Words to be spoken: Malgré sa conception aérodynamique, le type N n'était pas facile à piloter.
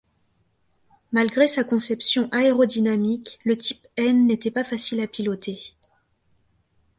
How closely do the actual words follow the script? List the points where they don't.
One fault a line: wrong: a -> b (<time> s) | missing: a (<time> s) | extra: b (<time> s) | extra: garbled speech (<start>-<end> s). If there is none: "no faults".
no faults